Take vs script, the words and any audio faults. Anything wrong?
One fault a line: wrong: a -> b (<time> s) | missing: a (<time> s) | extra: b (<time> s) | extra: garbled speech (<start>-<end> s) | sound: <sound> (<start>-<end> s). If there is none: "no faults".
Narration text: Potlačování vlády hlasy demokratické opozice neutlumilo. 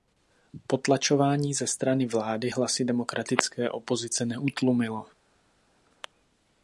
extra: ze strany (1.5 s)